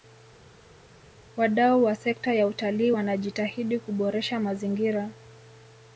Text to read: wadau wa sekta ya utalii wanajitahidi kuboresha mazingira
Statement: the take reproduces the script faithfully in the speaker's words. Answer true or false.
true